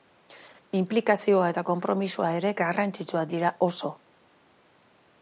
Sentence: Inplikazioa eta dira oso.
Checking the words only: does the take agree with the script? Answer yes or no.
no